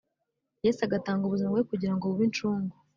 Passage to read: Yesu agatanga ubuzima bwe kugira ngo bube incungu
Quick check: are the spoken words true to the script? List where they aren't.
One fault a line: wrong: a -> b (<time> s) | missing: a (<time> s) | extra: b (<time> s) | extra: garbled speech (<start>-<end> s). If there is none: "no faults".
no faults